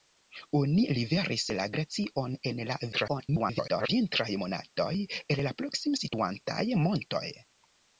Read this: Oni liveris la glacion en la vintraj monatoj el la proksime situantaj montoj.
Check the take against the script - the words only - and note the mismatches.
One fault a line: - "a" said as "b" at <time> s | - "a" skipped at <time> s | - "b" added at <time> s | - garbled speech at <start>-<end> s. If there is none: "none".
- garbled speech at 2.9-3.9 s